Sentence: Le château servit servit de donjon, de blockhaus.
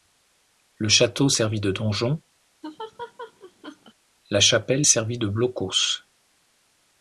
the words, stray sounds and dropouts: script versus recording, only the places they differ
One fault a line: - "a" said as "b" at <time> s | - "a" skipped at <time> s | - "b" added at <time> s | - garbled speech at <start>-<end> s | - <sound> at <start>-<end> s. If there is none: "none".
- "servit" skipped at 1.6 s
- laugh at 2.6-3.9 s
- "la chapelle servit" added at 4.3 s